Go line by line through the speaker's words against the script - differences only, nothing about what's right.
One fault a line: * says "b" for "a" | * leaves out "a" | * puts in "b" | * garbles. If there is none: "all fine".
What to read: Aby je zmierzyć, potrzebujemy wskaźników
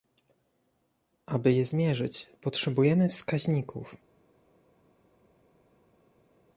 all fine